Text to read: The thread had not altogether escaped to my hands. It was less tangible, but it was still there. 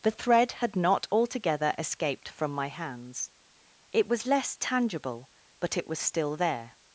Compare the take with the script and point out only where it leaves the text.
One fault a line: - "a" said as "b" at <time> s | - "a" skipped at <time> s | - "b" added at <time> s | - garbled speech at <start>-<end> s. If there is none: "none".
- "to" said as "from" at 2.3 s